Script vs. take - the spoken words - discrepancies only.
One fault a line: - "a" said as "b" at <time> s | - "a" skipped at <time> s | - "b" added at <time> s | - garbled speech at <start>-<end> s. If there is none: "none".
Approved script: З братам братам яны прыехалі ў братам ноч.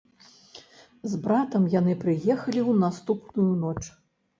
- "братам" skipped at 1.7 s
- "братам" said as "наступную" at 2.8 s